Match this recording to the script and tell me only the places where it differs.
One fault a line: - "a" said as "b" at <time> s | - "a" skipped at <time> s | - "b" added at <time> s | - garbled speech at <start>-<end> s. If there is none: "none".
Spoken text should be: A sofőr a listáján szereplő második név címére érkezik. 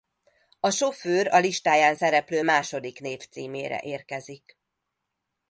none